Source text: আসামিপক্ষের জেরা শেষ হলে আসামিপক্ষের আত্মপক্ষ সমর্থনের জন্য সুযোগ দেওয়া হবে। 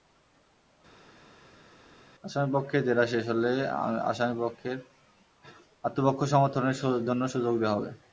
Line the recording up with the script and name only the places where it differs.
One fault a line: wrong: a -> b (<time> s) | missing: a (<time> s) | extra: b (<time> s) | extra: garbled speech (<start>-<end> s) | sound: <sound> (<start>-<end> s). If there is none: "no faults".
no faults